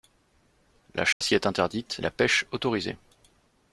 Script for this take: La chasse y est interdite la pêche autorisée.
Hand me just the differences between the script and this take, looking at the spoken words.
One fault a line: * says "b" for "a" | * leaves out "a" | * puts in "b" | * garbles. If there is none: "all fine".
all fine